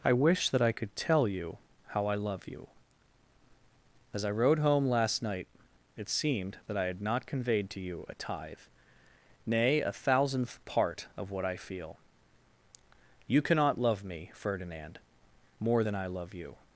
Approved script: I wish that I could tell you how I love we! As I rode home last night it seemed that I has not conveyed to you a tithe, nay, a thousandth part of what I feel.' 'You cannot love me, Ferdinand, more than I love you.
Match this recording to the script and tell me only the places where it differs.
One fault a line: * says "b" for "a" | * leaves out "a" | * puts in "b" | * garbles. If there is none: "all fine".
* says "you" for "we"
* says "had" for "has"